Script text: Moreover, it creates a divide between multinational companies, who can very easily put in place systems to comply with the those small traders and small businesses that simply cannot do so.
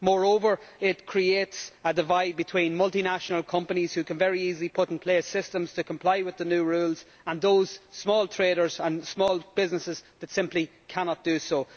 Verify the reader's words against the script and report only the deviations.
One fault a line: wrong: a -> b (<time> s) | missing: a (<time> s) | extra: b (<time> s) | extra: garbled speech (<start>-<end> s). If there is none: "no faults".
extra: new rules and (6.5 s)